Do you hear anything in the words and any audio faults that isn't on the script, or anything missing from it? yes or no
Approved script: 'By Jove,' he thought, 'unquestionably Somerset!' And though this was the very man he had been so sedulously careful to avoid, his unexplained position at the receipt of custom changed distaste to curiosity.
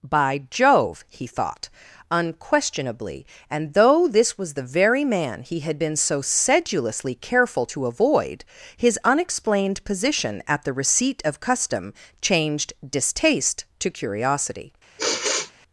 yes